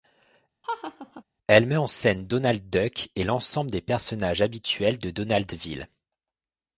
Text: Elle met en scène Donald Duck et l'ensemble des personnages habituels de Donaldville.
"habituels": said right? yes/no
yes